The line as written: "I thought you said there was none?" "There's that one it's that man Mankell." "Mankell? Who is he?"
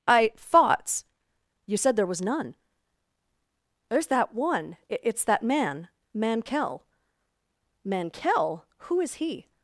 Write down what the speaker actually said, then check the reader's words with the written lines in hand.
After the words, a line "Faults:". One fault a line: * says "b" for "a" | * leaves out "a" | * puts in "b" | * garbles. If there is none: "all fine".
"I thoughts you said there was none?" "There's that one it's that man Mankell." "Mankell? Who is he?"
Faults:
* says "thoughts" for "thought"